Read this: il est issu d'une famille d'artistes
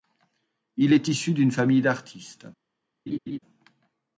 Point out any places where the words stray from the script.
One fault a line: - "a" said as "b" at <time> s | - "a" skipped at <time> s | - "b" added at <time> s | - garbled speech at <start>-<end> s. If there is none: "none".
none